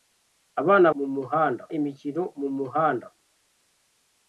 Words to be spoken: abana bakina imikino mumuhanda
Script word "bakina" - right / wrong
wrong